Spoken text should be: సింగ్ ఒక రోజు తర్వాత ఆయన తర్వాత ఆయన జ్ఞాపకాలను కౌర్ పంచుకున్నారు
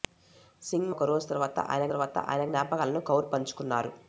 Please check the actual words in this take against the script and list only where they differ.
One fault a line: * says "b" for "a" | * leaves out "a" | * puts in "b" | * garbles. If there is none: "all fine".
all fine